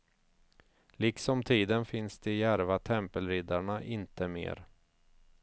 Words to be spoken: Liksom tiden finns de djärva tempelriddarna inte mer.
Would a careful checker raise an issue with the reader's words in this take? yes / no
no